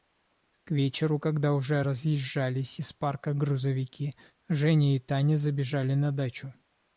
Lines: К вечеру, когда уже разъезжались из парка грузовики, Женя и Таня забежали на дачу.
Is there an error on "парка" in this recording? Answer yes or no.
no